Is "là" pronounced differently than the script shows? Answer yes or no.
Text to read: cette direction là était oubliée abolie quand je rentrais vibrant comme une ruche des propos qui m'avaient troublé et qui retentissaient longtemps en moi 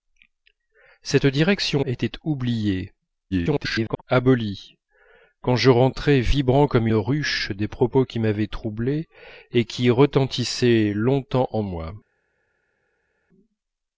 yes